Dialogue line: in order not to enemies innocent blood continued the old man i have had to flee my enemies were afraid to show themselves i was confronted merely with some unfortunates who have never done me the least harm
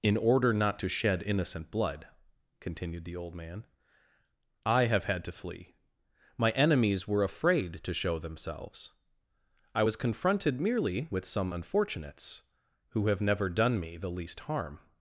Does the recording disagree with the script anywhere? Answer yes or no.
yes